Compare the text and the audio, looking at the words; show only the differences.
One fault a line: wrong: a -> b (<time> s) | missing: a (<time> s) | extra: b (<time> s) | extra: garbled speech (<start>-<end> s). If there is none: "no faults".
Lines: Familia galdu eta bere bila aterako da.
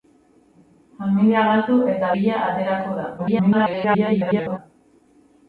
missing: bere (2.1 s)
extra: garbled speech (3.2-4.6 s)